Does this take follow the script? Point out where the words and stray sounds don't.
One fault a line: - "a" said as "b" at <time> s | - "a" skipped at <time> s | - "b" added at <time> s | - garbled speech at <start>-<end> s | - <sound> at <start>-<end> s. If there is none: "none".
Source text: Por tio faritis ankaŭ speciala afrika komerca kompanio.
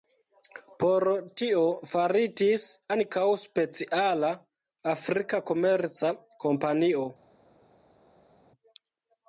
none